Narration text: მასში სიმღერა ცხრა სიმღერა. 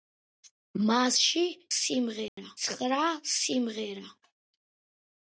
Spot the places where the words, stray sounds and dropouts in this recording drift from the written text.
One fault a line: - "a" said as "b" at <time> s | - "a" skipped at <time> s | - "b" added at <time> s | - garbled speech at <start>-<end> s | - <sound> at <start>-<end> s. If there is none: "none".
- dropout at 2.3-2.4 s